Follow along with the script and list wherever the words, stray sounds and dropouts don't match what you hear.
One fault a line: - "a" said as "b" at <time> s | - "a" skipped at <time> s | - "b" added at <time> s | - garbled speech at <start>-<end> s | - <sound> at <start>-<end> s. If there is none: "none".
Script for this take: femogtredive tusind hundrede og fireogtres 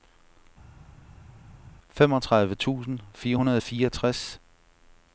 - "fire" added at 3.1 s